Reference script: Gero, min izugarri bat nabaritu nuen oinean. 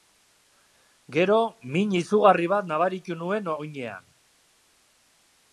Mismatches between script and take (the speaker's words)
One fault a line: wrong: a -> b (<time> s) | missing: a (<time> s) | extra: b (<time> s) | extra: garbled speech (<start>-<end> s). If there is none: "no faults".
no faults